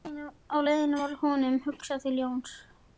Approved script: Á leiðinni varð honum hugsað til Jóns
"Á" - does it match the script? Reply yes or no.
yes